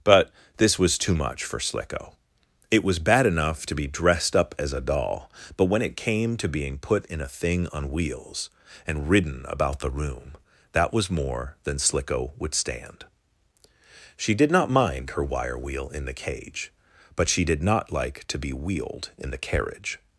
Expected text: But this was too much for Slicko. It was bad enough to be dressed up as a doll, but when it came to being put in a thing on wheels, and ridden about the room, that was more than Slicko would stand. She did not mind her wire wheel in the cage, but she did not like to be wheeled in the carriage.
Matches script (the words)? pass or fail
pass